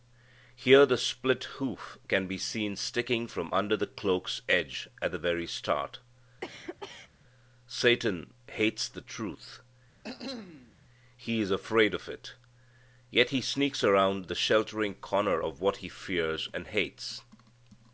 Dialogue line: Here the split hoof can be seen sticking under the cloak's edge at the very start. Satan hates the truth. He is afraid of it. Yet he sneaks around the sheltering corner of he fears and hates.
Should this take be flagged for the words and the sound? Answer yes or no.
yes